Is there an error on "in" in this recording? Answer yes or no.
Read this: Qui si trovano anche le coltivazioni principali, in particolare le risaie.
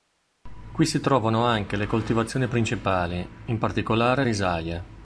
no